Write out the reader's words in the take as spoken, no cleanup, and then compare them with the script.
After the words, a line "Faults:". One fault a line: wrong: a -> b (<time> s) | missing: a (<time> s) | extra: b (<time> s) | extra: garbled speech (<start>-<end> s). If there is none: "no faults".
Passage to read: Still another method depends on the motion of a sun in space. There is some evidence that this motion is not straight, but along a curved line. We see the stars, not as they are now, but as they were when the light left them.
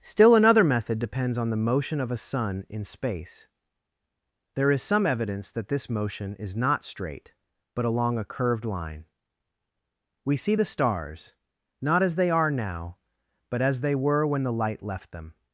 Still another method depends on the motion of a sun in space. There is some evidence that this motion is not straight, but along a curved line. We see the stars, not as they are now, but as they were when the light left them.
Faults:
no faults